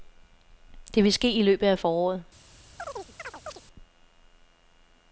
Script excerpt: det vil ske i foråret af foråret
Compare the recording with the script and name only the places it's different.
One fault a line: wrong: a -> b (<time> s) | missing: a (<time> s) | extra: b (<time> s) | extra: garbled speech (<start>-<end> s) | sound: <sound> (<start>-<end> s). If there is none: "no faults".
wrong: foråret -> løbet (1.4 s)
sound: chirp (2.8-3.6 s)